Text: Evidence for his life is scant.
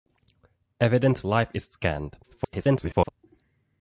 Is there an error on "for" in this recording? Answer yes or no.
yes